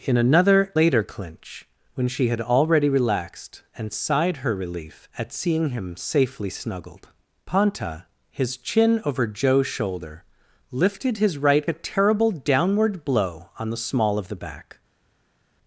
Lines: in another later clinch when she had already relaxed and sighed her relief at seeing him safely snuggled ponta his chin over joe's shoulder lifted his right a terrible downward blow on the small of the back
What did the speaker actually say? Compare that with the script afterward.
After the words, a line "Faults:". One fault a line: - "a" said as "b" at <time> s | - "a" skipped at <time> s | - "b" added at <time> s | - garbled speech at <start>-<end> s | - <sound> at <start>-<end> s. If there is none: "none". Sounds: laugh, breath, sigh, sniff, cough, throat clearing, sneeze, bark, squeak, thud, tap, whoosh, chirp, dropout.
in another later clinch when she had already relaxed and sighed her relief at seeing him safely snuggled ponta his chin over joe's shoulder lifted his right a terrible downward blow on the small of the back
Faults:
none